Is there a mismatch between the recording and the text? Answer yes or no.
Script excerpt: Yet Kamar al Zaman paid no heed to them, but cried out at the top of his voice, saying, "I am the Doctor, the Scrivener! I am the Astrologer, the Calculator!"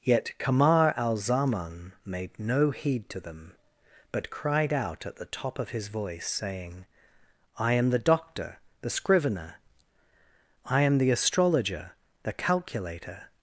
yes